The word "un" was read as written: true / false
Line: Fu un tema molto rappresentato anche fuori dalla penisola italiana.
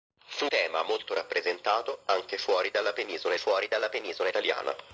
false